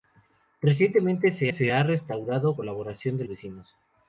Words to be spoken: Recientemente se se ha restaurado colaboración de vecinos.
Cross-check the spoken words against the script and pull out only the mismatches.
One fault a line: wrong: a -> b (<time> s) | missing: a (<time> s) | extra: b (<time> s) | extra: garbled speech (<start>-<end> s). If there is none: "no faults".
no faults